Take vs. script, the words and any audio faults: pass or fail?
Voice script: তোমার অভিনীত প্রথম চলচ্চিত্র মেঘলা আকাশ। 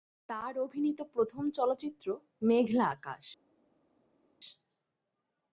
fail